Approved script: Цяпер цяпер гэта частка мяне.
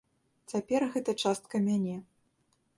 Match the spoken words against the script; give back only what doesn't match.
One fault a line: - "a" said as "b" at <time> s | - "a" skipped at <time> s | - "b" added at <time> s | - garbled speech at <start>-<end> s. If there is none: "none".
- "цяпер" skipped at 0.8 s